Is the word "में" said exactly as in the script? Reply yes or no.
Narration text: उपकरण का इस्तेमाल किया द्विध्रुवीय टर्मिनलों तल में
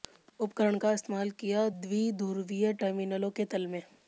yes